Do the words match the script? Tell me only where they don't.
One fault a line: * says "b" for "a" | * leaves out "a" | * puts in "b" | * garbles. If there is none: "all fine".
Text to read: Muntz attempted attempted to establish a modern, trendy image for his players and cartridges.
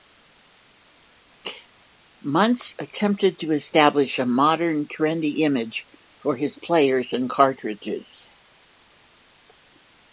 * leaves out "attempted"